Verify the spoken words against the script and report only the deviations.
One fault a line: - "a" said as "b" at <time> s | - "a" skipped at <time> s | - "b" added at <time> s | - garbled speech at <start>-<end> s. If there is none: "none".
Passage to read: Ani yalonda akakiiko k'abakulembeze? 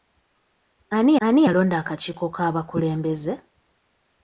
- "ani" added at 1.3 s